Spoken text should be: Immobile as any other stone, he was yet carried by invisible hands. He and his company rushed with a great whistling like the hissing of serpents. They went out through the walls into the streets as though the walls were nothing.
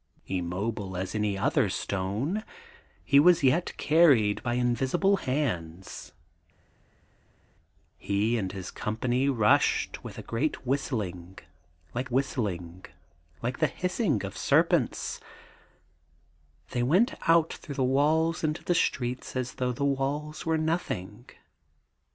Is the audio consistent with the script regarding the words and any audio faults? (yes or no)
no